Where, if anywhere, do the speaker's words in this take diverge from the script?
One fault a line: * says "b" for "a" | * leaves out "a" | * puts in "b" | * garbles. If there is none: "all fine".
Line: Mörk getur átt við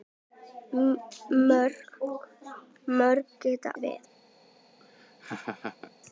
* leaves out "átt"